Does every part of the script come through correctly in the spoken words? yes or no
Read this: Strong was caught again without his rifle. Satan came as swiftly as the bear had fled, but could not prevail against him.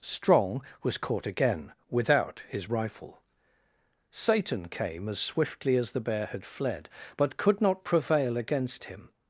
yes